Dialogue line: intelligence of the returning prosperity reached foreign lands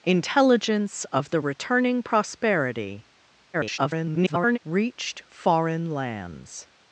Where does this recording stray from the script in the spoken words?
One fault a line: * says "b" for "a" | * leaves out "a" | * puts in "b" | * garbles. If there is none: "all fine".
* garbles